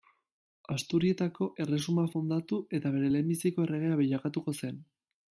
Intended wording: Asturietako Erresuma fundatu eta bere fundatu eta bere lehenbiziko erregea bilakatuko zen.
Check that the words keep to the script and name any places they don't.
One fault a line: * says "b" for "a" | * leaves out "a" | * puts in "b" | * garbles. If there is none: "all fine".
* leaves out "fundatu eta bere"